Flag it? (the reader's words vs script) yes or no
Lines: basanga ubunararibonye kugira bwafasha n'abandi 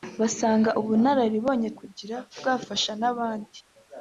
no